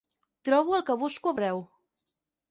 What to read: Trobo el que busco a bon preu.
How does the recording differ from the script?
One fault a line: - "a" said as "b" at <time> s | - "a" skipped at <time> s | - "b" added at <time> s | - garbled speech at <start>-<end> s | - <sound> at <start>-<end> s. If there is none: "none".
- "bon" skipped at 1.4 s